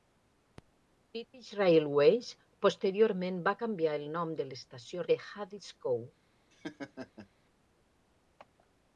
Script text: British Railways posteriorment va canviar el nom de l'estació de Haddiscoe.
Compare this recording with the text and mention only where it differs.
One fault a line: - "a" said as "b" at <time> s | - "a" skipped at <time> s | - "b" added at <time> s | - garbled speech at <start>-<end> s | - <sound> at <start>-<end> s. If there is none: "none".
- laugh at 6.5-7.3 s